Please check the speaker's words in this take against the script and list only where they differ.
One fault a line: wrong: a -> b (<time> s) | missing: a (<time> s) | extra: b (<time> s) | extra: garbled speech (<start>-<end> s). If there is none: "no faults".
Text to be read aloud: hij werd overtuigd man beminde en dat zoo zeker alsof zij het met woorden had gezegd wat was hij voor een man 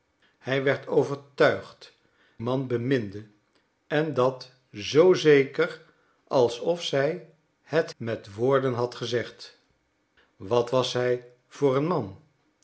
no faults